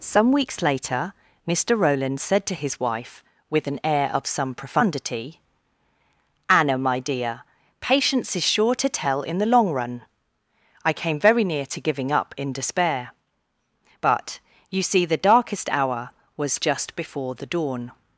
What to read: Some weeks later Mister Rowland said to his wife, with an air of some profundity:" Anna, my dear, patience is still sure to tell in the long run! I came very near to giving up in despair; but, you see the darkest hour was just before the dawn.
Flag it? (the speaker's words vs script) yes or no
yes